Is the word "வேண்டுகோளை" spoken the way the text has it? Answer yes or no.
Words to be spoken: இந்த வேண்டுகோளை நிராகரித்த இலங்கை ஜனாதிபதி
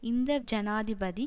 no